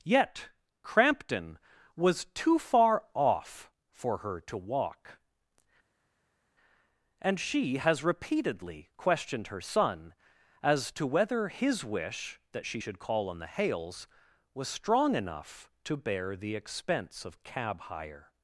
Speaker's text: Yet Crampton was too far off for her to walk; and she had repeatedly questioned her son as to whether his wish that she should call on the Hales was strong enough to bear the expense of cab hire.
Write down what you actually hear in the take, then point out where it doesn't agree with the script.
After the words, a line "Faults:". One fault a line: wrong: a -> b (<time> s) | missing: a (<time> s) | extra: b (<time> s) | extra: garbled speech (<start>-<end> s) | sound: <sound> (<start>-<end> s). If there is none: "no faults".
Yet Crampton was too far off for her to walk; and she has repeatedly questioned her son as to whether his wish that she should call on the Hales was strong enough to bear the expense of cab hire.
Faults:
wrong: had -> has (7.8 s)